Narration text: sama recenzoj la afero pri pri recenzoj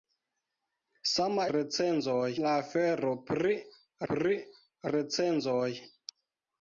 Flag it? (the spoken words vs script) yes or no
no